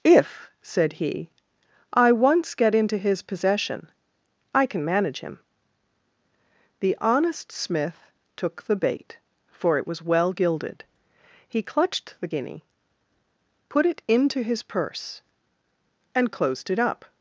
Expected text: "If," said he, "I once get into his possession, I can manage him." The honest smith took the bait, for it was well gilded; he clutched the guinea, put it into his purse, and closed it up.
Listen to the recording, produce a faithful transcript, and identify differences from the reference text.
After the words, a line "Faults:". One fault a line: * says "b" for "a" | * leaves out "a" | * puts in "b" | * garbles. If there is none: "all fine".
"If," said he, "I once get into his possession, I can manage him." The honest smith took the bait, for it was well gilded; he clutched the guinea, put it into his purse, and closed it up.
Faults:
all fine